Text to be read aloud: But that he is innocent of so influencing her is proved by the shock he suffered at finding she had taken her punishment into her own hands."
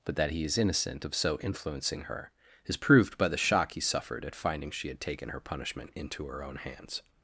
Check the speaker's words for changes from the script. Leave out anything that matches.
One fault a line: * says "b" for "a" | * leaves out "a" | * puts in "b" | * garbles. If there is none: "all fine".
all fine